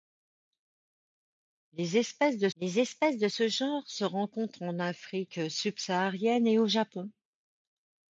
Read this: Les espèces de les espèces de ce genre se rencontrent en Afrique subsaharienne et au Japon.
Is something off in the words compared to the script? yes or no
no